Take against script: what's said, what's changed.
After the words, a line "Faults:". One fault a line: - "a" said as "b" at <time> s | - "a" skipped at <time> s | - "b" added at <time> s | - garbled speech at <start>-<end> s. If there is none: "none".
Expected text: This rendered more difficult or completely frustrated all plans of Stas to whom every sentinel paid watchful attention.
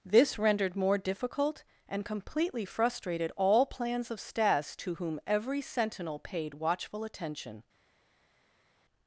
This rendered more difficult and completely frustrated all plans of Stas to whom every sentinel paid watchful attention.
Faults:
- "or" said as "and" at 1.9 s